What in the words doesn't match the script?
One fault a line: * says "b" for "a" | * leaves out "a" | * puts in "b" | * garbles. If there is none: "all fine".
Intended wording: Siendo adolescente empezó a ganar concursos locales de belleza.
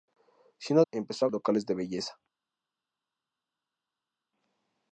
* leaves out "adolescente"
* leaves out "ganar concursos"